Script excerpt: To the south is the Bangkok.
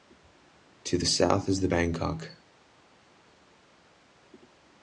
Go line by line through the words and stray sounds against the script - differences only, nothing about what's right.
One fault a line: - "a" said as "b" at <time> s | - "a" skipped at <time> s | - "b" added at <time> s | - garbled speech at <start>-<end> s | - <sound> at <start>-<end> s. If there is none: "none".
none